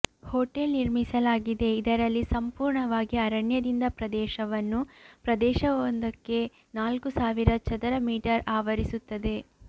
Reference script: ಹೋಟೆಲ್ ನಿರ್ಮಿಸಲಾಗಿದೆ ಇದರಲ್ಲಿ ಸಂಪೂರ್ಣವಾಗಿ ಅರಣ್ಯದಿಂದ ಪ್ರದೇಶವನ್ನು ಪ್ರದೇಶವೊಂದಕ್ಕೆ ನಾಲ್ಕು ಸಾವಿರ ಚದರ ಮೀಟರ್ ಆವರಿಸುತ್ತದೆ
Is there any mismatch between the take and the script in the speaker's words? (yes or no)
no